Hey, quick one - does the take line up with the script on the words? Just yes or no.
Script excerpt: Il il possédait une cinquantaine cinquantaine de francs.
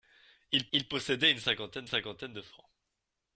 yes